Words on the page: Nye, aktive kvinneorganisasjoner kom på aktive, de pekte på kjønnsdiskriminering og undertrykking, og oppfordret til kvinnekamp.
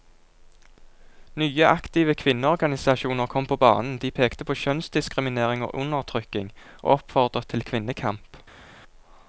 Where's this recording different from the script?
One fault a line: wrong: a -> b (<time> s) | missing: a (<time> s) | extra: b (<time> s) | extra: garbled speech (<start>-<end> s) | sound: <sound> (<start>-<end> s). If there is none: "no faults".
wrong: aktive -> banen (3.6 s)